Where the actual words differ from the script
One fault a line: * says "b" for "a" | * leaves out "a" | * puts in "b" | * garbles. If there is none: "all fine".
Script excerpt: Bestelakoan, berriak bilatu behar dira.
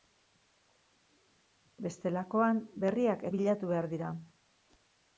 all fine